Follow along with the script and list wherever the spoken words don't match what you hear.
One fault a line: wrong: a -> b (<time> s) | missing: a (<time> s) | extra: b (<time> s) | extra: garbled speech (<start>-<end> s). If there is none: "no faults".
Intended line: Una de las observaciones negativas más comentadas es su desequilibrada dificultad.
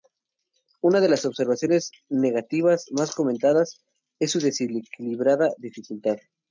no faults